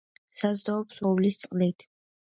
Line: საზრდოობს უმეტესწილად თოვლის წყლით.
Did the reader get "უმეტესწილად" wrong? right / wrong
wrong